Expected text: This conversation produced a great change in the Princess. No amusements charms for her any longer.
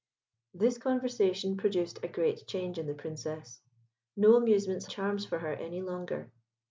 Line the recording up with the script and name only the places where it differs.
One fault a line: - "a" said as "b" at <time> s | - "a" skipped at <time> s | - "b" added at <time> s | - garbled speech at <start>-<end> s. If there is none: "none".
none